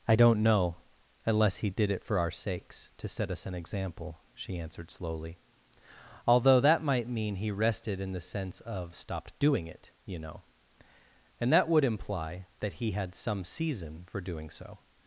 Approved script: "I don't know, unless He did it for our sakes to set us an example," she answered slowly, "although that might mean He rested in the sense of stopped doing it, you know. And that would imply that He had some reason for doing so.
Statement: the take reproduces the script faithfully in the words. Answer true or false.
false